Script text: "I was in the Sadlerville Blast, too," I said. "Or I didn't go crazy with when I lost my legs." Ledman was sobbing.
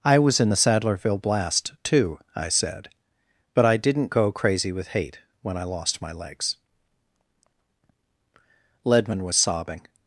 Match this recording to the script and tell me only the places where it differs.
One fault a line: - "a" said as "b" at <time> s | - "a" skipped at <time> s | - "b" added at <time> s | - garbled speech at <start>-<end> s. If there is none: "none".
- "Or" said as "But" at 3.5 s
- "hate" added at 4.9 s